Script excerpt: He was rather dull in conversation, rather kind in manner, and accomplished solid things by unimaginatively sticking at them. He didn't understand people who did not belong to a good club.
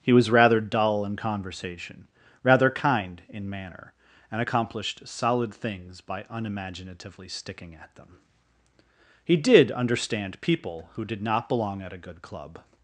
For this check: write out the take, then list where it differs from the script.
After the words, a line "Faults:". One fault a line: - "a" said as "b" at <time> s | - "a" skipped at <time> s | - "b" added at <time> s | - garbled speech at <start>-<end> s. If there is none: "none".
He was rather dull in conversation, rather kind in manner, and accomplished solid things by unimaginatively sticking at them. He did understand people who did not belong at a good club.
Faults:
- "didn't" said as "did" at 9.4 s
- "to" said as "at" at 11.8 s